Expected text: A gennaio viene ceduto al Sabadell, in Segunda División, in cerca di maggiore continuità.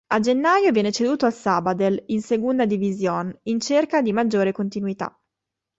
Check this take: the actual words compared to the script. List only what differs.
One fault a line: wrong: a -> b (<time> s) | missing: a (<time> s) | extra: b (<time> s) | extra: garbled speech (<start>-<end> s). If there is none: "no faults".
no faults